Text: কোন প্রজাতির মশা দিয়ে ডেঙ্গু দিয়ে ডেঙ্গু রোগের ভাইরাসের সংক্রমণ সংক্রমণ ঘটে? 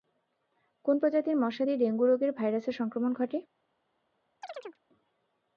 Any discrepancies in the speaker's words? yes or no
yes